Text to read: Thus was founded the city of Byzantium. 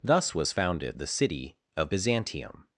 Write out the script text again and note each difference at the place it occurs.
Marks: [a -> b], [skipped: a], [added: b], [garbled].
Thus was founded the city of Byzantium.